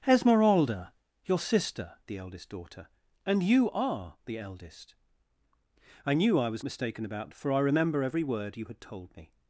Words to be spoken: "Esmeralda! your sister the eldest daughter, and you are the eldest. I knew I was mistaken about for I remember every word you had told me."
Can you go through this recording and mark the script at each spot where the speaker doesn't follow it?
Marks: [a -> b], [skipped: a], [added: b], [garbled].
"Esmeralda! your sister the eldest daughter, and you are the eldest. I knew I was mistaken about for I remember every word you had told me."